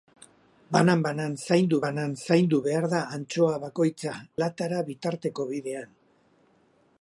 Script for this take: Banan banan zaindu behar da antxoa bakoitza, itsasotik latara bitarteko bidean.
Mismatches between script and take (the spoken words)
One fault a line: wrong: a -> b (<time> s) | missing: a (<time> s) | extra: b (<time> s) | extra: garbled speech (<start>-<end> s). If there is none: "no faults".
extra: banan zaindu (1.9 s)
missing: itsasotik (4.2 s)